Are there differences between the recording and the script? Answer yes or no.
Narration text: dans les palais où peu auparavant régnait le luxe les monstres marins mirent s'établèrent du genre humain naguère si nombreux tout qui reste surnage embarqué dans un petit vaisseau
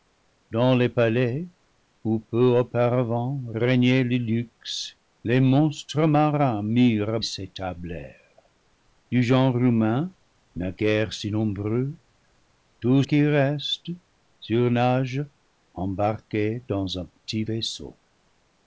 no